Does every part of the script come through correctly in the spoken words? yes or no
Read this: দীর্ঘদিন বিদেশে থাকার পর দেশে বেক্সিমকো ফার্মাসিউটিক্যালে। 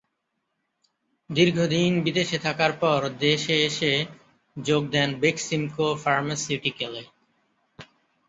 no